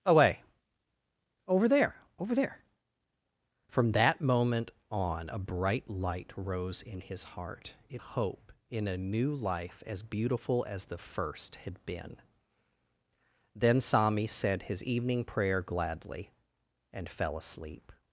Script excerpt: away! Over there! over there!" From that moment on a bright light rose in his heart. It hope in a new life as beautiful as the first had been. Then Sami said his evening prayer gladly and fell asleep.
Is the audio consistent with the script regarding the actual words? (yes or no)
yes